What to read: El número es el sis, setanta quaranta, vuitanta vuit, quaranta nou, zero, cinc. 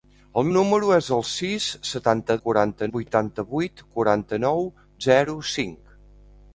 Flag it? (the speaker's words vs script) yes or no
no